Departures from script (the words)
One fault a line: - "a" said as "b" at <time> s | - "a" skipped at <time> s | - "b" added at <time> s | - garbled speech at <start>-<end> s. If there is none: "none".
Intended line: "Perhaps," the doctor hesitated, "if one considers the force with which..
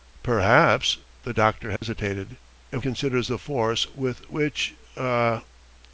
- "one" skipped at 2.8 s